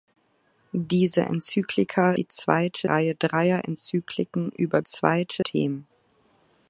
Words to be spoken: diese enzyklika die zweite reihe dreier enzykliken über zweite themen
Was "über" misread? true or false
false